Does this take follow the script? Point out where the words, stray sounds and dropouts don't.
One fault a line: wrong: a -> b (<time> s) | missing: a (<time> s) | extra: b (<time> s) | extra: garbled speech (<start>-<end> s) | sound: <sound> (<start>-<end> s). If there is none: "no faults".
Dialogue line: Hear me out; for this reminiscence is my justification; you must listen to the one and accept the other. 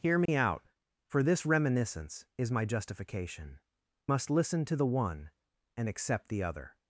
sound: dropout (0.3-0.3 s)
missing: you (3.6 s)